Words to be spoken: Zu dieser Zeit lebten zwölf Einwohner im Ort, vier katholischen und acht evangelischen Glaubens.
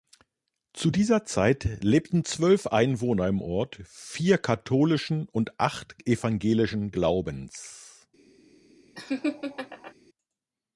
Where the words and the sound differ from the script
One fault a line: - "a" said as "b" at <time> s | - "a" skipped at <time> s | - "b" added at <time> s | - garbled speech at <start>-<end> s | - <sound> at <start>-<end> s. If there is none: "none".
- laugh at 8.9-9.9 s